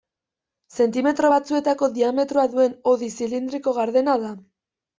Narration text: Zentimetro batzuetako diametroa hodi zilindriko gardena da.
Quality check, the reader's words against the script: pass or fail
fail